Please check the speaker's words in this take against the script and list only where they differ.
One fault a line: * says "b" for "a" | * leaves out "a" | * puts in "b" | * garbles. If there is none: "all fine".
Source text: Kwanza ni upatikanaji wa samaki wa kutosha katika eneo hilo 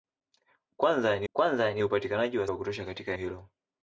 * puts in "kwanza ni"
* leaves out "samaki"
* leaves out "eneo"